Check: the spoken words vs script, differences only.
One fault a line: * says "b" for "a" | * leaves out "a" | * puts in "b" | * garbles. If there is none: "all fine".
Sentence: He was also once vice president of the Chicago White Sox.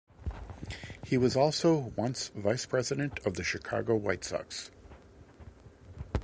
all fine